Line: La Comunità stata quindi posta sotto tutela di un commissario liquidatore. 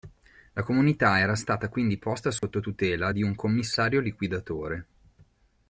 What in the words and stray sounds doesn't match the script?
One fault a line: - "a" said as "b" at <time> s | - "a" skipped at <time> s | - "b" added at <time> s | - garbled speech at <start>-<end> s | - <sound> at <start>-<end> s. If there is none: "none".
- "era" added at 1.2 s
- dropout at 2.4-2.4 s